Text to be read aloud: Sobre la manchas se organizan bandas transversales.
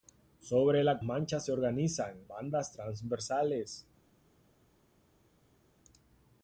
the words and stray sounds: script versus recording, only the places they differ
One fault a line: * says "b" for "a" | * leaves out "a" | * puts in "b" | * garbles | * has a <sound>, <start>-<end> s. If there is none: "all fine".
all fine